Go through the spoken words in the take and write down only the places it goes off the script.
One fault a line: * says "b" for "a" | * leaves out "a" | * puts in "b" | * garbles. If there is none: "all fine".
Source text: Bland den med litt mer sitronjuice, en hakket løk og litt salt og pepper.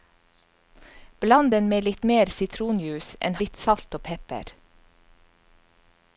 * leaves out "hakket løk og"